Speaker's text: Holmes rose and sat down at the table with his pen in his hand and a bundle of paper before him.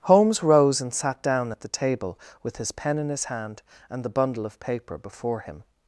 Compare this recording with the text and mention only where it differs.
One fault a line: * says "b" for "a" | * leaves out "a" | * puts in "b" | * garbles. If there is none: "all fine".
* says "the" for "a"